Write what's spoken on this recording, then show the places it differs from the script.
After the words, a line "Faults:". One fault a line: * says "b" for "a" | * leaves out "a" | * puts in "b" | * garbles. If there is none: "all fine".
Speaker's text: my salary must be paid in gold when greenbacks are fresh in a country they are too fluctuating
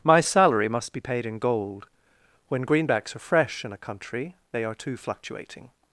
my salary must be paid in gold when greenbacks are fresh in a country they are too fluctuating
Faults:
all fine